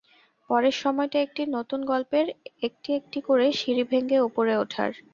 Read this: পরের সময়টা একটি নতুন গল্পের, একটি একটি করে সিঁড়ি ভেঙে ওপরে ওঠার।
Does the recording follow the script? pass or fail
pass